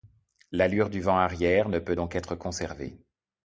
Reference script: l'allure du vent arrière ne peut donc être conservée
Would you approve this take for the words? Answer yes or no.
yes